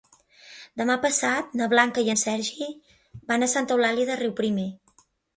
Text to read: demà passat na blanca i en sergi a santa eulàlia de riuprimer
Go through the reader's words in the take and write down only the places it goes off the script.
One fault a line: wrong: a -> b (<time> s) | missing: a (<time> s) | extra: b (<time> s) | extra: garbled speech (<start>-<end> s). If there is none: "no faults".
extra: van (3.3 s)